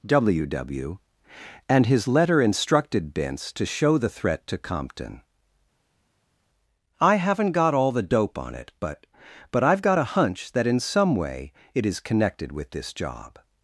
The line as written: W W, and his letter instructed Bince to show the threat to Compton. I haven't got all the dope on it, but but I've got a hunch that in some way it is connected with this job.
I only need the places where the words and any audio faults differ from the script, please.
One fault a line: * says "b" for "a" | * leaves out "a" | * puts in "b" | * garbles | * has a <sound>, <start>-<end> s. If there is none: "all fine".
all fine